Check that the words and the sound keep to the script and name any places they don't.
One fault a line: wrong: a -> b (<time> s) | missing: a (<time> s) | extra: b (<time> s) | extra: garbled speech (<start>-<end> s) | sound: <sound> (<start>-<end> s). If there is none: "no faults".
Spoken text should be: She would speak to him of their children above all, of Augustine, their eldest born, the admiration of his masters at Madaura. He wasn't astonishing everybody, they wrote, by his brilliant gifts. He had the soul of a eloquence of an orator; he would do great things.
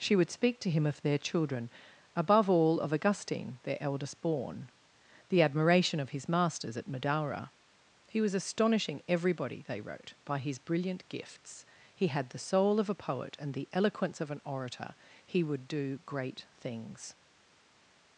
wrong: wasn't -> was (8.2 s)
extra: poet and the (12.9 s)